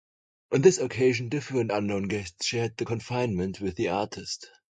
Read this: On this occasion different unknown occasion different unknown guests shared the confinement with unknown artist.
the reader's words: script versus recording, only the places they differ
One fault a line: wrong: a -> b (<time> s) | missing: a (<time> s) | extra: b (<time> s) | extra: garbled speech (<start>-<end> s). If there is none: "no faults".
missing: occasion different unknown (2.0 s)
wrong: unknown -> the (3.8 s)